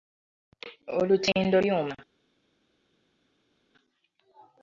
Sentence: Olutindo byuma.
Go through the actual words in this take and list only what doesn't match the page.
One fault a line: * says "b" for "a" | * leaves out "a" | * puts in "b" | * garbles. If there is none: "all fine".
all fine